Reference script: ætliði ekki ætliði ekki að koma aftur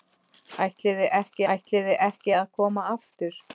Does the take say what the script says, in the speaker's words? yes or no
yes